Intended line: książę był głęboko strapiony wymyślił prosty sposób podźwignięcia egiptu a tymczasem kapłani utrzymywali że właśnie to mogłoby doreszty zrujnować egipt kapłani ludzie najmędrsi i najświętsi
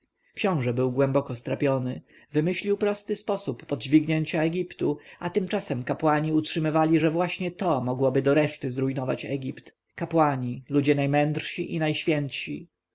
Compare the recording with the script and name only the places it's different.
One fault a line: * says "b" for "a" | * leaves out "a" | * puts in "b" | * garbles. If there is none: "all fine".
all fine